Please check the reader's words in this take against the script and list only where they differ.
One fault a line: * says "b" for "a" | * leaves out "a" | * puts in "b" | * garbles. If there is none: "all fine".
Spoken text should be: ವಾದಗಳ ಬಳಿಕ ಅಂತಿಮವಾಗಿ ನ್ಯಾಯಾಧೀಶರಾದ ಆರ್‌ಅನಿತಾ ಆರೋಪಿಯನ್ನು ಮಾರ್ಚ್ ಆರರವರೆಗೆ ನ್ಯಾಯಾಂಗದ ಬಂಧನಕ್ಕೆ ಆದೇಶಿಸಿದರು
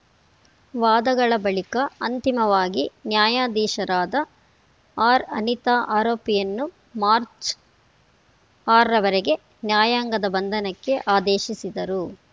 all fine